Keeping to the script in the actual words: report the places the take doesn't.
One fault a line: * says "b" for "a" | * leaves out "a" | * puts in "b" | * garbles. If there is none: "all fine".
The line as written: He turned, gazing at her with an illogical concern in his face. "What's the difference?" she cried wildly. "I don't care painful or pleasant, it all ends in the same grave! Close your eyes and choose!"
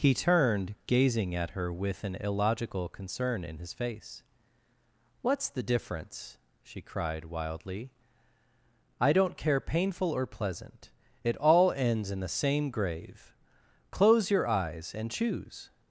all fine